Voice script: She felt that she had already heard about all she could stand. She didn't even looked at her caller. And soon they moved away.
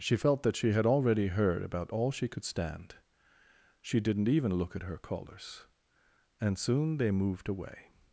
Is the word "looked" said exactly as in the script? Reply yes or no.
no